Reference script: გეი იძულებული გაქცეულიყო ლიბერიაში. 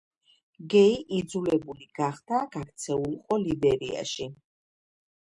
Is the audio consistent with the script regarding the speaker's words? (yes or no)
no